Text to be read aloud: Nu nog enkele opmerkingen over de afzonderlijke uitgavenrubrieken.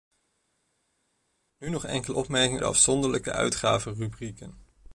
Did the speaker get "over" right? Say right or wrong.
wrong